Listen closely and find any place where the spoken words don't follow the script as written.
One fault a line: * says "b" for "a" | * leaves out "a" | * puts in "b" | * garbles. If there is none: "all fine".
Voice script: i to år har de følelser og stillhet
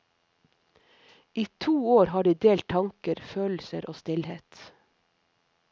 * puts in "delt tanker"